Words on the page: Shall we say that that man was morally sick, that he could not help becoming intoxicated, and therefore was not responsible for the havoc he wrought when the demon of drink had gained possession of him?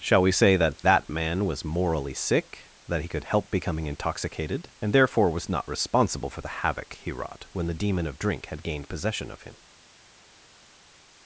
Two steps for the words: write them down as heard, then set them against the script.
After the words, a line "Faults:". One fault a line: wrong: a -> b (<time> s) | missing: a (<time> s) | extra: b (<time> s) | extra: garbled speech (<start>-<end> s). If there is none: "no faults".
Shall we say that that man was morally sick, that he could help becoming intoxicated, and therefore was not responsible for the havoc he wrought when the demon of drink had gained possession of him?
Faults:
missing: not (3.2 s)